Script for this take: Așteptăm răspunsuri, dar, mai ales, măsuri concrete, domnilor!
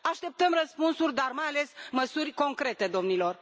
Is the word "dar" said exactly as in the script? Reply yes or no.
yes